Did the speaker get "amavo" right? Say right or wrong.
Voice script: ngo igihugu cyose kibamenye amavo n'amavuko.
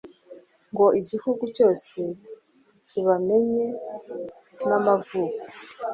wrong